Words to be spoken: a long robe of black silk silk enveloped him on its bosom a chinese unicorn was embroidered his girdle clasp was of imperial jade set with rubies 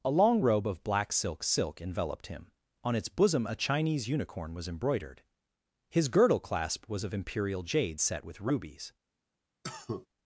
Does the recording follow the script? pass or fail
pass